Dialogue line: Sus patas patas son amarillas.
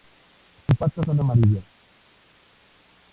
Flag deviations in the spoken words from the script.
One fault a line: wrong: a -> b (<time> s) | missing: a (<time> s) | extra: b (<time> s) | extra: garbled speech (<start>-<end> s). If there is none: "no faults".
missing: patas (1.1 s)